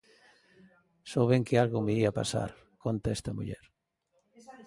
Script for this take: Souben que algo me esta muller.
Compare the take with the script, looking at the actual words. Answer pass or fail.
fail